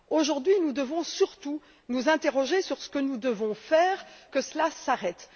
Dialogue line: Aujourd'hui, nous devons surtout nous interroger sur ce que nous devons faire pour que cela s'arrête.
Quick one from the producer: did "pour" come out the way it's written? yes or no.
no